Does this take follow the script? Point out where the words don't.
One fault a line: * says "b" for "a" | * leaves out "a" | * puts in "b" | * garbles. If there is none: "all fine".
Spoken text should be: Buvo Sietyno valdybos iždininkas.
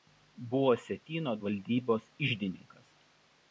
all fine